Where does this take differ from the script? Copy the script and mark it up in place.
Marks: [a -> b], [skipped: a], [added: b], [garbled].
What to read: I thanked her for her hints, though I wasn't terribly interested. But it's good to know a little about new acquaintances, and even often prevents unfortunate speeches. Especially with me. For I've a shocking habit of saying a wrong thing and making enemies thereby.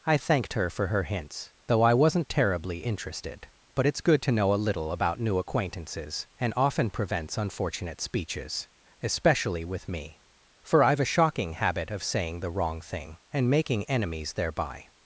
I thanked her for her hints, though I wasn't terribly interested. But it's good to know a little about new acquaintances, and [skipped: even] often prevents unfortunate speeches. Especially with me. For I've a shocking habit of saying [a -> the] wrong thing and making enemies thereby.